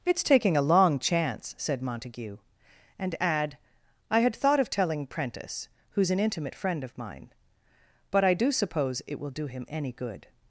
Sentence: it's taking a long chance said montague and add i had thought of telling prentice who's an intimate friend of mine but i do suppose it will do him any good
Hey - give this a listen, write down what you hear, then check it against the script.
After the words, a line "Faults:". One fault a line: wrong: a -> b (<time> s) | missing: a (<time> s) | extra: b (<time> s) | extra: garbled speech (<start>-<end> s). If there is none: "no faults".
it's taking a long chance said montague and add i had thought of telling prentice who's an intimate friend of mine but i do suppose it will do him any good
Faults:
no faults